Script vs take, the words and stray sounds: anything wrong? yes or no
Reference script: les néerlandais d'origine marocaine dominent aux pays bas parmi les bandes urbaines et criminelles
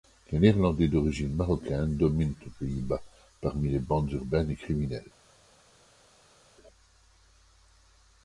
no